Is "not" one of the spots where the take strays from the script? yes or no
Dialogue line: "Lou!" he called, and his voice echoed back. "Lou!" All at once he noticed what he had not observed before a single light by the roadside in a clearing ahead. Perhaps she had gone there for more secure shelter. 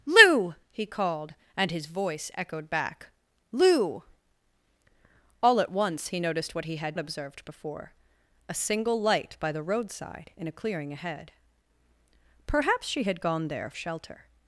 yes